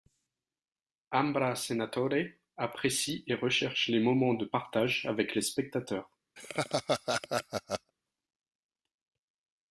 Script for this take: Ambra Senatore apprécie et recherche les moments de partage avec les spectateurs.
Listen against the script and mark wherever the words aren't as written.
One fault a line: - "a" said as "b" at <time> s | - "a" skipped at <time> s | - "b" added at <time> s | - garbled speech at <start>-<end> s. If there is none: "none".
none